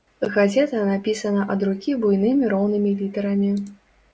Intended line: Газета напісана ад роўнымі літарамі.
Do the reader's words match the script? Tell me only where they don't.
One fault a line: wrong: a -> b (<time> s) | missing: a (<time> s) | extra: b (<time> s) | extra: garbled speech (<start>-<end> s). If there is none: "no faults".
extra: рукі буйнымі (1.7 s)